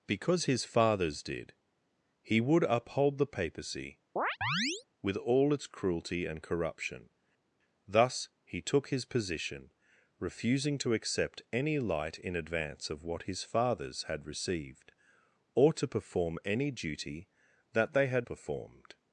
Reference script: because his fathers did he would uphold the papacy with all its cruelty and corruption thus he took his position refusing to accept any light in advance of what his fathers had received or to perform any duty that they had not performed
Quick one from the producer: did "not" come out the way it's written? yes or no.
no